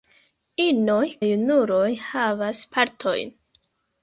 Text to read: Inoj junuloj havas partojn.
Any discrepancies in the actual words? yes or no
no